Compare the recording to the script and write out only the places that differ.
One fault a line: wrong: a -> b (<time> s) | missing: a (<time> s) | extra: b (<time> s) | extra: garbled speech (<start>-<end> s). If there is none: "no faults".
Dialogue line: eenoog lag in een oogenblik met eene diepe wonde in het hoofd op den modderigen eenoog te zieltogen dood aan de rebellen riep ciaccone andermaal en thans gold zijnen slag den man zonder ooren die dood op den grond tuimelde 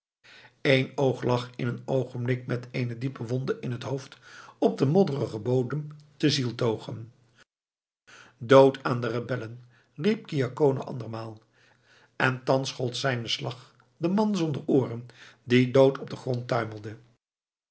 wrong: eenoog -> bodem (5.4 s)